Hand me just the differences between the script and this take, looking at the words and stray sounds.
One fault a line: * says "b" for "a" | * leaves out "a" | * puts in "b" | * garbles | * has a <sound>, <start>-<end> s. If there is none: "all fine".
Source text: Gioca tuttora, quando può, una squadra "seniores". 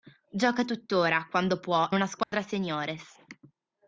* has a dropout, 2.2-2.3 s